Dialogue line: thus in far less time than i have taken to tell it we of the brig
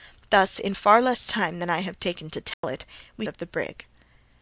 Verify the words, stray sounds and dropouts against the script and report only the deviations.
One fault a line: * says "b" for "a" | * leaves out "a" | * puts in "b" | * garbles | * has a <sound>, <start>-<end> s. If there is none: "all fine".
* has a dropout, 2.5-2.6 s